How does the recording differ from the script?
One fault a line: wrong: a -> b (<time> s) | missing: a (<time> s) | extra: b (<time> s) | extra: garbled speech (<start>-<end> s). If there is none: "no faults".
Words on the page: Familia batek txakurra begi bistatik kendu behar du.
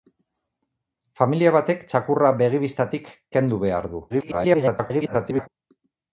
extra: garbled speech (4.1-5.5 s)